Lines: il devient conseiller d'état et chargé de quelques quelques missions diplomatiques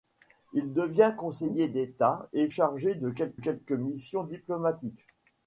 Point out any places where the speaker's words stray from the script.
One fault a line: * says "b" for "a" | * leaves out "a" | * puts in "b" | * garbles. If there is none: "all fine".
all fine